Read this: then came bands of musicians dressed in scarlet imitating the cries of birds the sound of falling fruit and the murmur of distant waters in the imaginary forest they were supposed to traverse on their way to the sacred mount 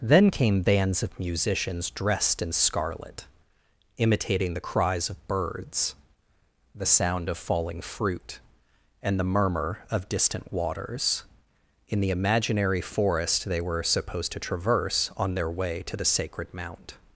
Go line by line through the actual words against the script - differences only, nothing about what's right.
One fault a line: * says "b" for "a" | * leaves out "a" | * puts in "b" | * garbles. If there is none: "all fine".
all fine